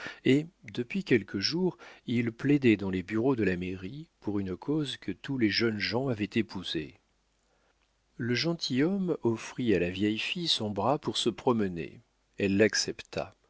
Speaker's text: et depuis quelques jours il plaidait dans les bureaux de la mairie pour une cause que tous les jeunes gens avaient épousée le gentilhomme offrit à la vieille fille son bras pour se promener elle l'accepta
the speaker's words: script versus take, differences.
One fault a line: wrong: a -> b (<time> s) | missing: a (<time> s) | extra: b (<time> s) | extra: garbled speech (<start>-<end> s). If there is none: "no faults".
no faults